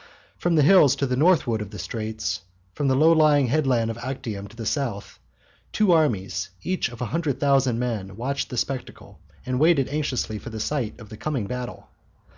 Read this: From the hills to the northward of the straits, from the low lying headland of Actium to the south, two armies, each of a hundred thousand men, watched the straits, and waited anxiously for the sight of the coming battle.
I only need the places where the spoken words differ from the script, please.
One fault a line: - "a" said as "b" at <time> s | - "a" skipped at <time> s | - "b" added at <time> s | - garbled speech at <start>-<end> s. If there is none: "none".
- "straits" said as "spectacle" at 8.6 s